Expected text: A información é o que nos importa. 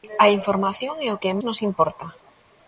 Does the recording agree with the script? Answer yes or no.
yes